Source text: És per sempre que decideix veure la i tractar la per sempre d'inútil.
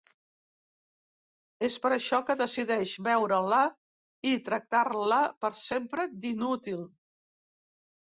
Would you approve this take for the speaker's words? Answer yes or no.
no